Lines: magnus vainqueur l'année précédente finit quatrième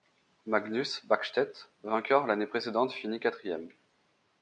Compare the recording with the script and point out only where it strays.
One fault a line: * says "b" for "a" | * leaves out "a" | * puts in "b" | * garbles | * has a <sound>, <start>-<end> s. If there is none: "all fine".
* puts in "bäckstedt"